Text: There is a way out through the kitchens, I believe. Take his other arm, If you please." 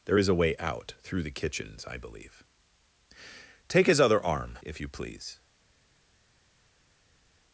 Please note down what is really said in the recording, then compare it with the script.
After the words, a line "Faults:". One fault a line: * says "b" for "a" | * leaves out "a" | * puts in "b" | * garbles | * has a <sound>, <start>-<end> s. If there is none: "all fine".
There is a way out through the kitchens, I believe. Take his other arm, If you please."
Faults:
all fine